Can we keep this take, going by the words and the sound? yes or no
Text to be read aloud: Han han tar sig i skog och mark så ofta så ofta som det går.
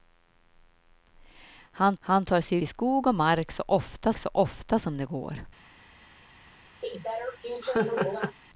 no